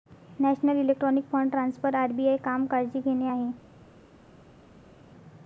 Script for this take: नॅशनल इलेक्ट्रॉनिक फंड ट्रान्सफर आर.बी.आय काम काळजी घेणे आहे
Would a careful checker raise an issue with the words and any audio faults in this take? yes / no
no